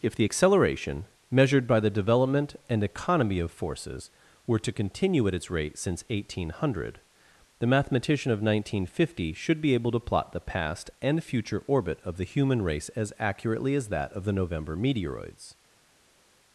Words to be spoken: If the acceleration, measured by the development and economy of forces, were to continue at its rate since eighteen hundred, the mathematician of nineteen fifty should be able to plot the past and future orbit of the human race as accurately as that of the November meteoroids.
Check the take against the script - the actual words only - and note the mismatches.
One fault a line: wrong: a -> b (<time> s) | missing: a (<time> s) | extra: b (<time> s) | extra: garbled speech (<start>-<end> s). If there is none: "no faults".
no faults